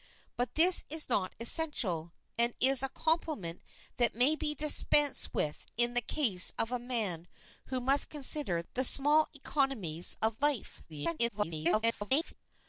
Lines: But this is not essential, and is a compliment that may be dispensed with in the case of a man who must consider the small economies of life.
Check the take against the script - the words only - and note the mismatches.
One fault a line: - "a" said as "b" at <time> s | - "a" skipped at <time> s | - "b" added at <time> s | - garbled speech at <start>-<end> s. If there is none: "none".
- garbled speech at 10.9-12.3 s